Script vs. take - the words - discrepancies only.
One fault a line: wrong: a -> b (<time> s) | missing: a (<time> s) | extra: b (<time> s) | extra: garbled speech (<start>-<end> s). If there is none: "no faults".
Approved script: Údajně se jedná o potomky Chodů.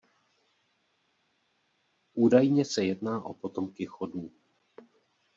no faults